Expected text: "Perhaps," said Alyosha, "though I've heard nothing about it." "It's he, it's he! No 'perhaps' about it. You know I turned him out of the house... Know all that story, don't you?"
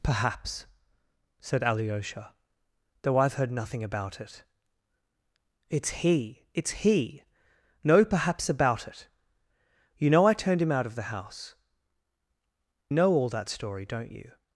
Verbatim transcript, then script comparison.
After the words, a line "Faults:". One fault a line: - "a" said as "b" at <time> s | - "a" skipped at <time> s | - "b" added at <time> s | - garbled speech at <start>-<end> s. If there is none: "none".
"Perhaps," said Alyosha, "though I've heard nothing about it." "It's he, it's he! No 'perhaps' about it. You know I turned him out of the house... Know all that story, don't you?"
Faults:
none